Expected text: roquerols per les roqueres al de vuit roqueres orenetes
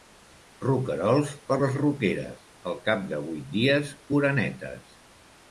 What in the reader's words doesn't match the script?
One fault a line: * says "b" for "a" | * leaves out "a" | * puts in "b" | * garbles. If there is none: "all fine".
* puts in "cap"
* says "dies" for "roqueres"